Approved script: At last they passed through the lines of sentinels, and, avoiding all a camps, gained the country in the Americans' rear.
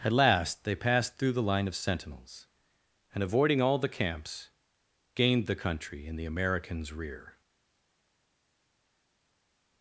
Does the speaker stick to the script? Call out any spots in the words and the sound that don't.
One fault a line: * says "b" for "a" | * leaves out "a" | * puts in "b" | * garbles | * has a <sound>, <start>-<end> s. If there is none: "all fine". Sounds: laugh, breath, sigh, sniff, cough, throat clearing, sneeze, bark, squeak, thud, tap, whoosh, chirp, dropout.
* says "line" for "lines"
* says "the" for "a"